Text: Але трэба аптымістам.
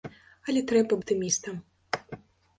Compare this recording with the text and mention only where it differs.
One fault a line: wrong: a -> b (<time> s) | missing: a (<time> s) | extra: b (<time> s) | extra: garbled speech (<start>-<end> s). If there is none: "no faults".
no faults